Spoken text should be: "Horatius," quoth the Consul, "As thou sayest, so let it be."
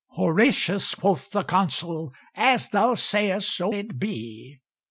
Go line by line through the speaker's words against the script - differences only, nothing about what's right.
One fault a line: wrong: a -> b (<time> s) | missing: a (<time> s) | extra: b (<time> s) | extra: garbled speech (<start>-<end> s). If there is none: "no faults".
missing: let (3.7 s)